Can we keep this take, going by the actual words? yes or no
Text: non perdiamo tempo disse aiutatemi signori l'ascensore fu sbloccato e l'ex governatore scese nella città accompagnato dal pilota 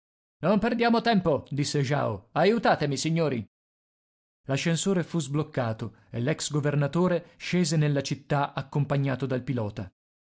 no